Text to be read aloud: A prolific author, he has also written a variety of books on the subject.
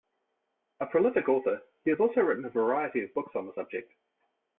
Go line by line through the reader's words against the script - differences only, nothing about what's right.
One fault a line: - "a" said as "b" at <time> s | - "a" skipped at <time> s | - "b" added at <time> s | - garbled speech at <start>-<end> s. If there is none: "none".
none